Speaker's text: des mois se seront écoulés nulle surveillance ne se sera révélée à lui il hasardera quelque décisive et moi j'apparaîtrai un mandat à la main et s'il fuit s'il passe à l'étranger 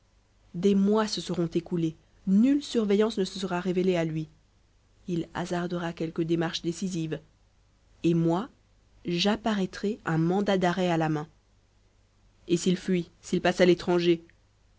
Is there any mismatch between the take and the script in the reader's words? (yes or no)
yes